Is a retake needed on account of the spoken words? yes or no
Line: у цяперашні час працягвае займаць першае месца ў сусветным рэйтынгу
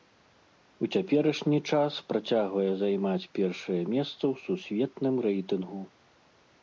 no